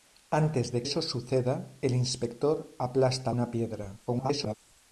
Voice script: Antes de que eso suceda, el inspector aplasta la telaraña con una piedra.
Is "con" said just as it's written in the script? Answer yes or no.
no